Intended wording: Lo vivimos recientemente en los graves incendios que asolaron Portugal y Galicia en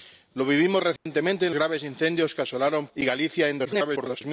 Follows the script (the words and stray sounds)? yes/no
no